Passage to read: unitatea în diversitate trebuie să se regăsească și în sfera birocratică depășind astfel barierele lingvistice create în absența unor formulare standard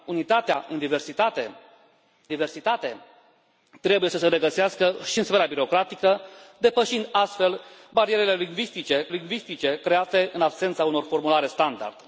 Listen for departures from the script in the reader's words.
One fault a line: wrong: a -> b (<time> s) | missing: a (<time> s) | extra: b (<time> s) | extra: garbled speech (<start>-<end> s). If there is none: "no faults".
extra: diversitate (2.3 s)
extra: lingvistice (9.1 s)